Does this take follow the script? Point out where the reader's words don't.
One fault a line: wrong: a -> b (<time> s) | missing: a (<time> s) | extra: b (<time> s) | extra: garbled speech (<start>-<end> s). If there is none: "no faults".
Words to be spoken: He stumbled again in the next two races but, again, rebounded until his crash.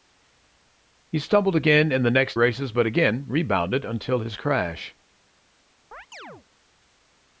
missing: two (2.4 s)